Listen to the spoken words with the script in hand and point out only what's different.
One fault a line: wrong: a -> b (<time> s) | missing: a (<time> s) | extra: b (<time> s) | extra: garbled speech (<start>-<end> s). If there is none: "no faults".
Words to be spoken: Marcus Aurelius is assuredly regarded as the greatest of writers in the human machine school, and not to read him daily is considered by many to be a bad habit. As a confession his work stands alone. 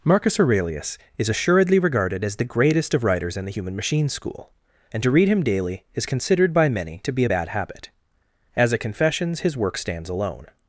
missing: not (5.0 s)
wrong: confession -> confessions (8.8 s)